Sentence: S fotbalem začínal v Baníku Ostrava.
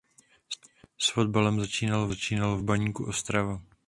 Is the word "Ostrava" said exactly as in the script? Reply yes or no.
yes